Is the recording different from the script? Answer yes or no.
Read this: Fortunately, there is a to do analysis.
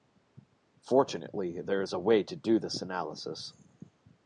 yes